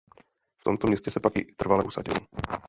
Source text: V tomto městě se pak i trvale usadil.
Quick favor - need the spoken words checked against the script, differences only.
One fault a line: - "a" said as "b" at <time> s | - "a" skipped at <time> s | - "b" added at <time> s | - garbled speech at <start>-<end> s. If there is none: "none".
none